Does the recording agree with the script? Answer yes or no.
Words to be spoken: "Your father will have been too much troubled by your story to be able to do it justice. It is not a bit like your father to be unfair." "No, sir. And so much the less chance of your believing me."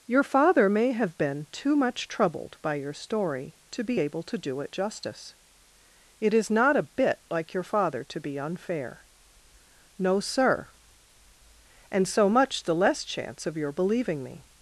no